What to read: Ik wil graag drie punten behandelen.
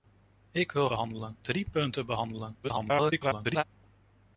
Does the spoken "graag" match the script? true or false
false